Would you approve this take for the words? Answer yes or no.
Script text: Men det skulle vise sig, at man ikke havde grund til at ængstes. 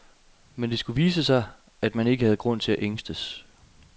yes